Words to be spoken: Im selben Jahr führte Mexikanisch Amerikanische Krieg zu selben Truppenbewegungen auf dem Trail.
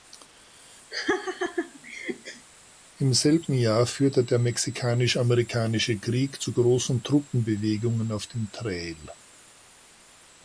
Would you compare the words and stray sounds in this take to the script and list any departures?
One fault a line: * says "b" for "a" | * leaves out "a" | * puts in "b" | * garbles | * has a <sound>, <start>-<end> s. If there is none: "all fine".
* has a laugh, 0.9-2.5 s
* puts in "der"
* says "großen" for "selben"